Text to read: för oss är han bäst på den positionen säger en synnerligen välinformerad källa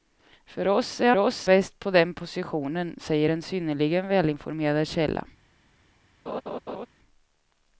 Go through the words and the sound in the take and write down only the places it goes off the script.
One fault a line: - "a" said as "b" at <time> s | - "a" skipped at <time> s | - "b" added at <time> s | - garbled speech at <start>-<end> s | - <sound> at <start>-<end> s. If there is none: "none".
- "han" said as "oss" at 1.2 s
- laugh at 6.3-6.9 s